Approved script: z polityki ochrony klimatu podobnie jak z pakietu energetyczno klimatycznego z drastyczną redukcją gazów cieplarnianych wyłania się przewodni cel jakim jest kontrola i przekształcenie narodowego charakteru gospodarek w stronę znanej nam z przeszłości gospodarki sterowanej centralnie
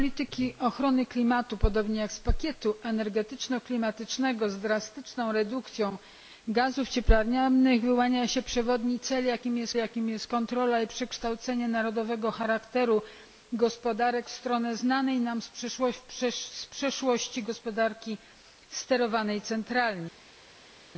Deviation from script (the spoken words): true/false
true